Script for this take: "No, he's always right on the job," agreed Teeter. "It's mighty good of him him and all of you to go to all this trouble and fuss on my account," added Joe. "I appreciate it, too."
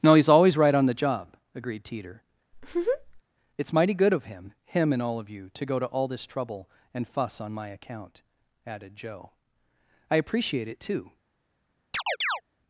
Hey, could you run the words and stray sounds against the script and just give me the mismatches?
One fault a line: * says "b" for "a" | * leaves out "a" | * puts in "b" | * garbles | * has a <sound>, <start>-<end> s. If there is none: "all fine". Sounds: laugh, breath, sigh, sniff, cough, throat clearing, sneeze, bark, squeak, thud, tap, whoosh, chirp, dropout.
* has a laugh, 2.5-3.2 s
* has a chirp, 11.9-12.4 s